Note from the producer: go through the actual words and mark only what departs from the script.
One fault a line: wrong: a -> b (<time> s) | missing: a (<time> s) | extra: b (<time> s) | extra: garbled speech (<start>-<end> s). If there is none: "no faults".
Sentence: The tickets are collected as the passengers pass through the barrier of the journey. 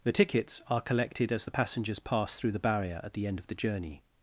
extra: at the end (3.0 s)